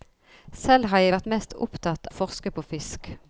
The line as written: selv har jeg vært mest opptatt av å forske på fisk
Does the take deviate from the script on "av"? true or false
true